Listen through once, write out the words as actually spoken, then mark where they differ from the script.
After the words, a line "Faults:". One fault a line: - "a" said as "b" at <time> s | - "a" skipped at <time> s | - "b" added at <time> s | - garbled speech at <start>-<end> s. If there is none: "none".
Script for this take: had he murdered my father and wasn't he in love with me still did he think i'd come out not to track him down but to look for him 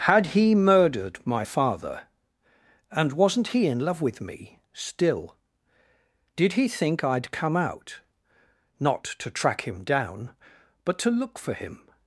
had he murdered my father and wasn't he in love with me still did he think i'd come out not to track him down but to look for him
Faults:
none